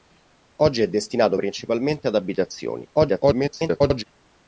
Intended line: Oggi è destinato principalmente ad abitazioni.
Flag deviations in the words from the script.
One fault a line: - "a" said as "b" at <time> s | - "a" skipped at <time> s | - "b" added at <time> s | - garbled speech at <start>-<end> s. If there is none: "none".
- garbled speech at 2.9-4.0 s